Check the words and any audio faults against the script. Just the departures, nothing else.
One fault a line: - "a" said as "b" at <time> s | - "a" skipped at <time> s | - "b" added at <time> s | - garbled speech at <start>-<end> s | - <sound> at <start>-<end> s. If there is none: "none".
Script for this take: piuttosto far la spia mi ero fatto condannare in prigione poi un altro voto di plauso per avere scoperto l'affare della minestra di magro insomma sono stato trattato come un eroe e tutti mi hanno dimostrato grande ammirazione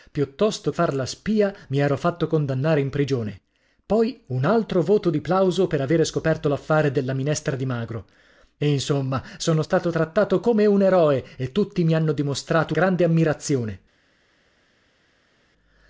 none